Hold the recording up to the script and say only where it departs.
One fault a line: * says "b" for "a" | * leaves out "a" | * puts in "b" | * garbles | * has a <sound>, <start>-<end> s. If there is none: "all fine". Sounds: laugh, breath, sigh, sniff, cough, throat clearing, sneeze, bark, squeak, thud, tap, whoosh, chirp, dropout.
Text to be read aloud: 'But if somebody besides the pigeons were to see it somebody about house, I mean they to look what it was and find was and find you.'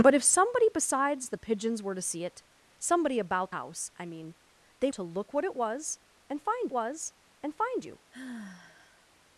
* has a sigh, 8.1-9.1 s